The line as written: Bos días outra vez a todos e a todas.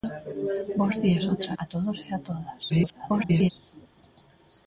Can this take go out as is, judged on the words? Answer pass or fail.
fail